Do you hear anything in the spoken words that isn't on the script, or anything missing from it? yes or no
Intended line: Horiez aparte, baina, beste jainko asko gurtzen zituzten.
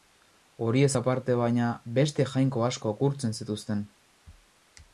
no